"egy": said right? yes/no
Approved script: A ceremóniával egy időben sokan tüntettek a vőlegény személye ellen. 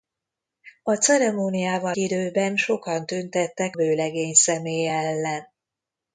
no